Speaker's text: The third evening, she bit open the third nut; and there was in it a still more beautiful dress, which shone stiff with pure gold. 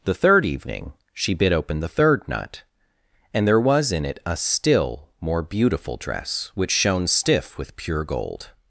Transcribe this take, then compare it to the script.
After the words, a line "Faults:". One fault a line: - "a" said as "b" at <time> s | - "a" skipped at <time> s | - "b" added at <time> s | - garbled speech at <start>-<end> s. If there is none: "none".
The third evening, she bit open the third nut; and there was in it a still more beautiful dress, which shone stiff with pure gold.
Faults:
none